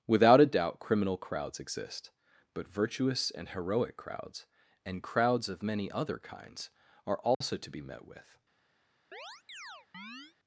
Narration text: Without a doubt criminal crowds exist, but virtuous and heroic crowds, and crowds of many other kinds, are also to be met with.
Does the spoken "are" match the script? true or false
true